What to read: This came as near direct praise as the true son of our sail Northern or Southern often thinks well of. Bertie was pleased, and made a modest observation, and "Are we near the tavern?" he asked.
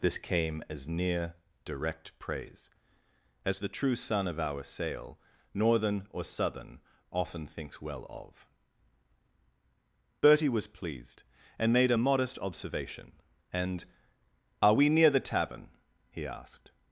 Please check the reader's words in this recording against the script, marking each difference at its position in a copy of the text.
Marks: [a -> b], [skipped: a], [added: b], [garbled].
This came as near direct praise as the true son of our sail Northern or Southern often thinks well of. Bertie was pleased, and made a modest observation, and "Are we near the tavern?" he asked.